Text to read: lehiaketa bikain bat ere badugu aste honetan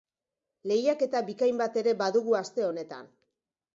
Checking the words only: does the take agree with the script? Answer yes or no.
yes